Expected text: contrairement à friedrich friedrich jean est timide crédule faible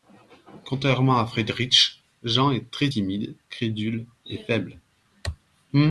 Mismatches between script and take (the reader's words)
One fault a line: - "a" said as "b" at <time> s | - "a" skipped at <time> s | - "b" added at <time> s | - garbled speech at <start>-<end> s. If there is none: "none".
- "friedrich" skipped at 2.0 s
- "très" added at 2.7 s
- "et" added at 4.3 s